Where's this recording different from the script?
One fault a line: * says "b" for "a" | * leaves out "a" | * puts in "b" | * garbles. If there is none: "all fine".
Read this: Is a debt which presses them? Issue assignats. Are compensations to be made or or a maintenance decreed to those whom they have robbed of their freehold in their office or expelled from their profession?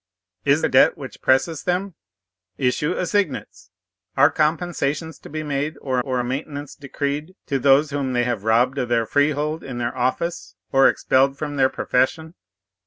all fine